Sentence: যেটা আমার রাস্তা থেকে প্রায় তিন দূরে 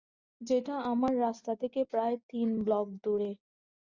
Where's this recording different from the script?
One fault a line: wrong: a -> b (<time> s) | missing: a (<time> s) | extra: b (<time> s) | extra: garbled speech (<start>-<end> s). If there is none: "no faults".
extra: ব্লক (2.6 s)